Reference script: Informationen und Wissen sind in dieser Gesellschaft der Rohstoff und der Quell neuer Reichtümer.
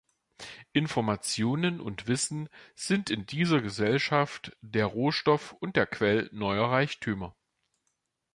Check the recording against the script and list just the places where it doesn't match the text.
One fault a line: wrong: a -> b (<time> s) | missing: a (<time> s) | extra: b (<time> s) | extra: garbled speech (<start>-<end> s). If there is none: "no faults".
no faults